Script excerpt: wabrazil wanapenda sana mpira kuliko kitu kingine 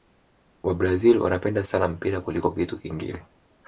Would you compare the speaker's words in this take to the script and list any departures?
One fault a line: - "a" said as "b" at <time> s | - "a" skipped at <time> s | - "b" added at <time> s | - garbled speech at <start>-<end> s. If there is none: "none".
none